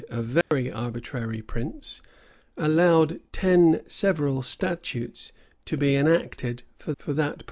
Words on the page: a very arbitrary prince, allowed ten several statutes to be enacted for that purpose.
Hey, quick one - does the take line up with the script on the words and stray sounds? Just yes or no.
no